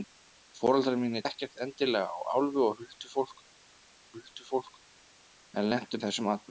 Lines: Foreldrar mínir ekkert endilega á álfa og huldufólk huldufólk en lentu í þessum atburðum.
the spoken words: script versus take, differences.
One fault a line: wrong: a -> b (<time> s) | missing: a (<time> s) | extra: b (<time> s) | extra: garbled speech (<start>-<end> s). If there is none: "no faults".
no faults